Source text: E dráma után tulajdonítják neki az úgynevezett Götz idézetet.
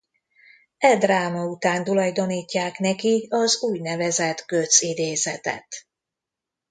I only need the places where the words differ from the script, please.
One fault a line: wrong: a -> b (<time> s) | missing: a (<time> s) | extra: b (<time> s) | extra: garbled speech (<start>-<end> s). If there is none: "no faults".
no faults